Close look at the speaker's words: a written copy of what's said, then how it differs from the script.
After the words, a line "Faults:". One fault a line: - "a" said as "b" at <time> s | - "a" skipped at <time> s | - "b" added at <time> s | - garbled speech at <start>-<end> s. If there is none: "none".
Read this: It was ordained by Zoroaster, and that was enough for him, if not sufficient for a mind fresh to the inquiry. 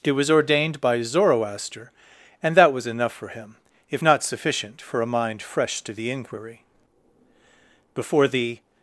It was ordained by Zoroaster, and that was enough for him, if not sufficient for a mind fresh to the inquiry. Before the
Faults:
- "Before the" added at 7.9 s